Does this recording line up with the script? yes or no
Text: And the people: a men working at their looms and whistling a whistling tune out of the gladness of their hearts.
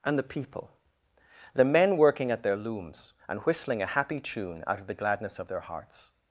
no